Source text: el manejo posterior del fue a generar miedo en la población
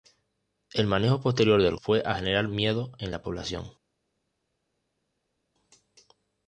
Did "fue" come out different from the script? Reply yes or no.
no